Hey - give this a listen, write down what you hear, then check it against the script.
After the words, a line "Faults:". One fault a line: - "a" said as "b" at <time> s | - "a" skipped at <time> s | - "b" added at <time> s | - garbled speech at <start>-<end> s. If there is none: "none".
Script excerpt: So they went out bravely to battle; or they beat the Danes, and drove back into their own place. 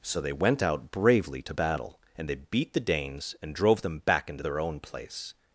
So they went out bravely to battle; and they beat the Danes, and drove them back into their own place.
Faults:
- "or" said as "and" at 2.2 s
- "them" added at 3.8 s